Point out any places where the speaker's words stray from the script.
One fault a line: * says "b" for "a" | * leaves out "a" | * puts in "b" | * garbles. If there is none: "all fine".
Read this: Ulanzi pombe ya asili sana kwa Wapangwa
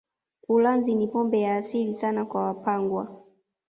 * puts in "ni"